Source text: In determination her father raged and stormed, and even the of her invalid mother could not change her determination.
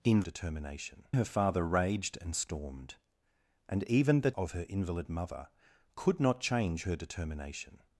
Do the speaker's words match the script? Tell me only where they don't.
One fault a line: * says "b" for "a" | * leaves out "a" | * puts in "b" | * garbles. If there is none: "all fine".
all fine